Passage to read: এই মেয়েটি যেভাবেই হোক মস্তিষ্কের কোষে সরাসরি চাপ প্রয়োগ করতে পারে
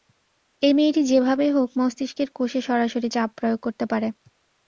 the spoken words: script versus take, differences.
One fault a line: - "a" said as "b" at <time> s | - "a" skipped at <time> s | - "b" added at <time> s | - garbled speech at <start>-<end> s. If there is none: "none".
none